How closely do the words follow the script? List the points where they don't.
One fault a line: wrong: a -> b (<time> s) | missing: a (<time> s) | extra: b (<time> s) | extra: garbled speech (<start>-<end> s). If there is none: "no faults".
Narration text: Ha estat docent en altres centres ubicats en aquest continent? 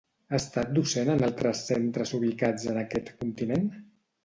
no faults